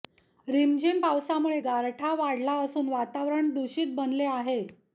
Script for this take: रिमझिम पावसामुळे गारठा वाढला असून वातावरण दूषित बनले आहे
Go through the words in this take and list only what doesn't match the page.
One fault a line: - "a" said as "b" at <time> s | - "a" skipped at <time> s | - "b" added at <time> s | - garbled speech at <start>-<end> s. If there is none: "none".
none